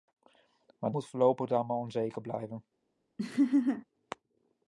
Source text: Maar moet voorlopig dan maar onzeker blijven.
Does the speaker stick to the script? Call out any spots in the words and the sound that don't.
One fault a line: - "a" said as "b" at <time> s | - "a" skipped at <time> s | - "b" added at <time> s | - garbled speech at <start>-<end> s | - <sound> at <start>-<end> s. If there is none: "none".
- laugh at 3.2-3.8 s